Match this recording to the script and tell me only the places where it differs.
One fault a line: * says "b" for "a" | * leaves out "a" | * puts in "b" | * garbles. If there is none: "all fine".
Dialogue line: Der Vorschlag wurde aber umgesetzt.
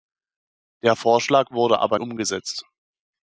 all fine